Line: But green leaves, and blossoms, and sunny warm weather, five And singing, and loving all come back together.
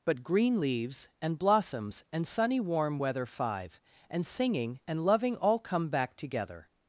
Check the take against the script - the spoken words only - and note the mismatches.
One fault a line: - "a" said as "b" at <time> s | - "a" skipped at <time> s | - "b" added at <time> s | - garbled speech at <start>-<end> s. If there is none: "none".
none